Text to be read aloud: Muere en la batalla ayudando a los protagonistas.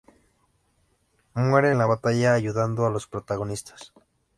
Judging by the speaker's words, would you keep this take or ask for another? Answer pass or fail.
pass